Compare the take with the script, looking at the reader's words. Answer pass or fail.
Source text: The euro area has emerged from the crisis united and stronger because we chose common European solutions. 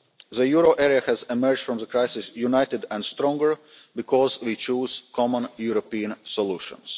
pass